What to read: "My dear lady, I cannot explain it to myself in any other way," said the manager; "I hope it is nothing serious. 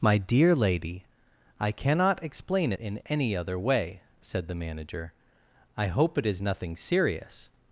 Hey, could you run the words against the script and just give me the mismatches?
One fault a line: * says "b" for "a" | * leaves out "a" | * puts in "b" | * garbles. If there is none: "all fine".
* leaves out "it to myself"